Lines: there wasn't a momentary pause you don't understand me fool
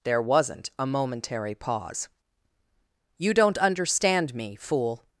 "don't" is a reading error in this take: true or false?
false